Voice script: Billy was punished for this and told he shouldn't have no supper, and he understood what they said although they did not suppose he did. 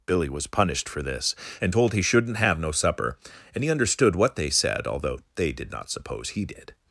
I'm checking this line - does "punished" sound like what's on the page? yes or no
yes